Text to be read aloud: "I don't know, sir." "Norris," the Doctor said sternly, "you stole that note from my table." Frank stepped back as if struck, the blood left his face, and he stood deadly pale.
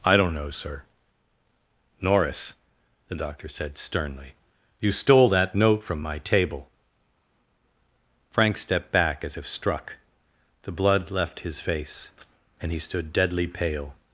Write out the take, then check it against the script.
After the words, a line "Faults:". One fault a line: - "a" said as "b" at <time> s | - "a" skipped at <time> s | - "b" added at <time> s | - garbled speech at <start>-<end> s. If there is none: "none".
"I don't know, sir." "Norris," the Doctor said sternly, "you stole that note from my table." Frank stepped back as if struck, the blood left his face, and he stood deadly pale.
Faults:
none